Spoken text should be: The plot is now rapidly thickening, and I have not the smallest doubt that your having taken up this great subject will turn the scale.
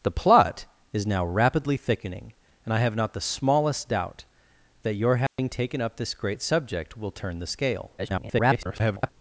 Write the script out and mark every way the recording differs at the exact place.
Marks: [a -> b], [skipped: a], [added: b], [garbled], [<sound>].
The plot is now rapidly thickening, and I have not the smallest doubt that your having [dropout] taken up this great subject will turn the scale. [garbled]